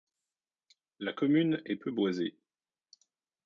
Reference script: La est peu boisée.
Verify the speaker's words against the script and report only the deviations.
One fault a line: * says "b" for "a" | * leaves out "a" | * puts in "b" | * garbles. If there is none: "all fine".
* puts in "commune"